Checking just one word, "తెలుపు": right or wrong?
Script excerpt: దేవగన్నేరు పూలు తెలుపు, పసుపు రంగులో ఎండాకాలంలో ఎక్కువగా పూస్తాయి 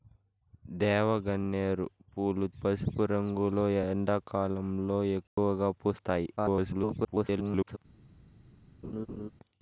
wrong